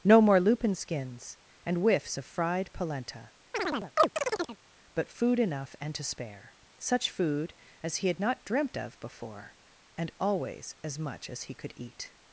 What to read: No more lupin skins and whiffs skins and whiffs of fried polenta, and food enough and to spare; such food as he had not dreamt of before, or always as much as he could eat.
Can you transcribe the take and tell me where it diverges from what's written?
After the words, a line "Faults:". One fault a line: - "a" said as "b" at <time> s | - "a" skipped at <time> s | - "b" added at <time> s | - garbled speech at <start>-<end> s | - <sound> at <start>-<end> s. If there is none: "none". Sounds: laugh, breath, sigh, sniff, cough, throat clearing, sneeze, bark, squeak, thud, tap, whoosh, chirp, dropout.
No more lupin skins and whiffs of fried polenta, but food enough and to spare; such food as he had not dreamt of before, and always as much as he could eat.
Faults:
- "skins and whiffs" skipped at 2.2 s
- chirp at 3.5-4.6 s
- "and" said as "but" at 4.9 s
- "or" said as "and" at 10.0 s